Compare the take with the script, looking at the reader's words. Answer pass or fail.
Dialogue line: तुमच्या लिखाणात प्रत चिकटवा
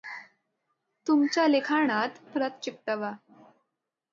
pass